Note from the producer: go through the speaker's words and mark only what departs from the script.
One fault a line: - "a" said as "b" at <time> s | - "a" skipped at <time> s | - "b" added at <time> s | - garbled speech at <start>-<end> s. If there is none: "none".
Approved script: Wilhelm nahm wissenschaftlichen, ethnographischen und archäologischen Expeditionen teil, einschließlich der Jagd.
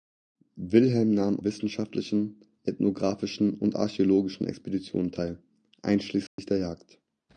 none